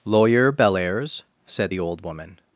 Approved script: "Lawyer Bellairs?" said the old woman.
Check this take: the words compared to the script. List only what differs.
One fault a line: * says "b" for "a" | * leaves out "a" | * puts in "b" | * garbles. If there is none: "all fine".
all fine